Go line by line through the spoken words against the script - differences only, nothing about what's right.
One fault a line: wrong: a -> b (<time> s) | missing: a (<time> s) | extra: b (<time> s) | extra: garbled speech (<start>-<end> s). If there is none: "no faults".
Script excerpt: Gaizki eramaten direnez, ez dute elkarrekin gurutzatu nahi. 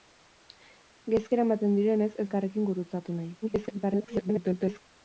missing: dute (2.3 s)
extra: garbled speech (3.4-4.8 s)